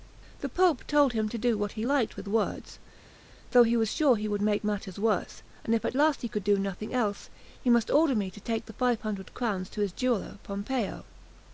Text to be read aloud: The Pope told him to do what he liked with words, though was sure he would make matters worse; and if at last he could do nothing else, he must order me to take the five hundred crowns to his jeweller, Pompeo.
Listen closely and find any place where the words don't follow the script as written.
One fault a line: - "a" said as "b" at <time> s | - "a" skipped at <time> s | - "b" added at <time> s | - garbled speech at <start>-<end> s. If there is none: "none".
- "he" added at 3.6 s